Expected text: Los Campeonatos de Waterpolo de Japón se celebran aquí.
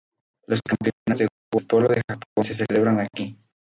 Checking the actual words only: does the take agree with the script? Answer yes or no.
yes